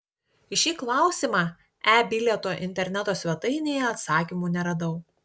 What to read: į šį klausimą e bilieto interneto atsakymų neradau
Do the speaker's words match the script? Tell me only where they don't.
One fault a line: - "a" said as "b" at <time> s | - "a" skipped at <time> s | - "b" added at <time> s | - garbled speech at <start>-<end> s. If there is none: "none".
- "svetainėje" added at 3.2 s